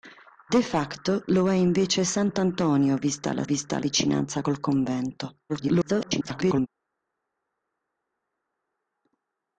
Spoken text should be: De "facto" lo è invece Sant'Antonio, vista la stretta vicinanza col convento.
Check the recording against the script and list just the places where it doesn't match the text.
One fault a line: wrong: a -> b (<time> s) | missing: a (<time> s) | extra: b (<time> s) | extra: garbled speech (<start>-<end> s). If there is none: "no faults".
wrong: stretta -> vista (3.4 s)
extra: garbled speech (5.5-6.7 s)